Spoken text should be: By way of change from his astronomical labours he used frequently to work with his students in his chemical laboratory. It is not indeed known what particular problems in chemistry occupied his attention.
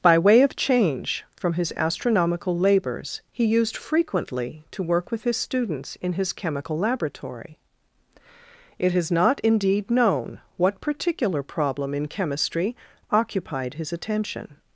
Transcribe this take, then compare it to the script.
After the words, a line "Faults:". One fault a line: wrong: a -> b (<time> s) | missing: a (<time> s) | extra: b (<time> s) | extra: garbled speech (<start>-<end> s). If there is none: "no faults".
By way of change from his astronomical labours he used frequently to work with his students in his chemical laboratory. It is not indeed known what particular problem in chemistry occupied his attention.
Faults:
wrong: problems -> problem (11.4 s)